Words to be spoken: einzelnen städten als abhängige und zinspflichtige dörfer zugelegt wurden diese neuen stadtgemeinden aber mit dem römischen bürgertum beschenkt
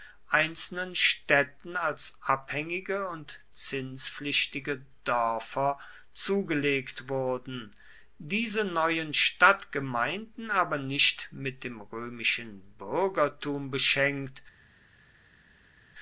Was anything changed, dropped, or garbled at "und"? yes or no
no